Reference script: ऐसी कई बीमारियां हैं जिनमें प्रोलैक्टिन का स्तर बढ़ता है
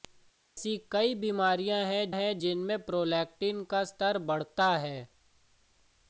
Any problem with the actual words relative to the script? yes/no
yes